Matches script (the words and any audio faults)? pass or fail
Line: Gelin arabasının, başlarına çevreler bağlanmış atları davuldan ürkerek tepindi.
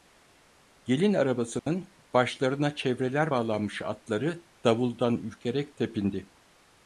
fail